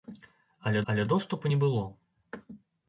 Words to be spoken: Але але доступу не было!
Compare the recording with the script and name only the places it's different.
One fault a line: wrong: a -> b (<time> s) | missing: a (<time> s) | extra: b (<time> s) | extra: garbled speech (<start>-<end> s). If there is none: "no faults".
no faults